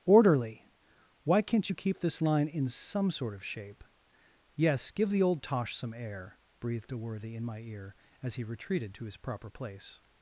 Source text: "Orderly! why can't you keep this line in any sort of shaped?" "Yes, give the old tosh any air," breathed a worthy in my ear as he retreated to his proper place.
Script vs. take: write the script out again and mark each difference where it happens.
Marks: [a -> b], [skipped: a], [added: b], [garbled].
"Orderly! why can't you keep this line in [any -> some] sort of [shaped?" -> shape] "Yes, give the old tosh [any -> some] air," breathed a worthy in my ear as he retreated to his proper place.